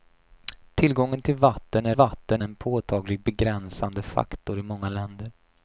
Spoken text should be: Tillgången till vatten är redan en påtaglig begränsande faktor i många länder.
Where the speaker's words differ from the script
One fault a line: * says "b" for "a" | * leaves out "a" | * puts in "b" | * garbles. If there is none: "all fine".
* says "vatten" for "redan"